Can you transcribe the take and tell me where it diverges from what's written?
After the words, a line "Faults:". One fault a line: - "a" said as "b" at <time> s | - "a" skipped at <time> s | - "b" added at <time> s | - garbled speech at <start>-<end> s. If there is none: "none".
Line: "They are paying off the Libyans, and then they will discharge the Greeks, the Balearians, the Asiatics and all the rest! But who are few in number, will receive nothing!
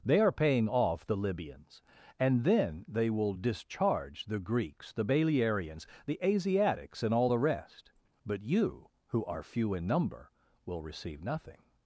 "They are paying off the Libyans, and then they will discharge the Greeks, the Balearians, the Asiatics and all the rest! But you, who are few in number, will receive nothing!
Faults:
- "you" added at 8.4 s